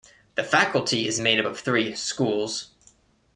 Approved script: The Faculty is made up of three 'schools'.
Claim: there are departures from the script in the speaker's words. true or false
false